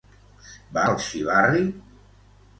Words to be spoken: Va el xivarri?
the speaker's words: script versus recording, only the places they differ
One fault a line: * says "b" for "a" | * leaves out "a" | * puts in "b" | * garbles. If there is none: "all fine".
all fine